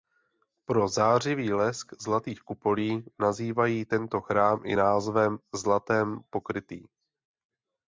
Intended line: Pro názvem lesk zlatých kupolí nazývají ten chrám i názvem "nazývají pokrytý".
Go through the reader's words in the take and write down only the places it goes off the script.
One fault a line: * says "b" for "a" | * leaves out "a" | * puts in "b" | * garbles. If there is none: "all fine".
* says "zářivý" for "názvem"
* says "tento" for "ten"
* says "zlatem" for "nazývají"